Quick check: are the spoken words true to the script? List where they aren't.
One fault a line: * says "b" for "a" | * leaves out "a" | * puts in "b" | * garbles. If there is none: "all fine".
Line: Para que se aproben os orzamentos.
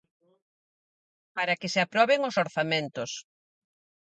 all fine